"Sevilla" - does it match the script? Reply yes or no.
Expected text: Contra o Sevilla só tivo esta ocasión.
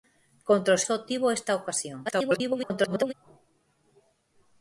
no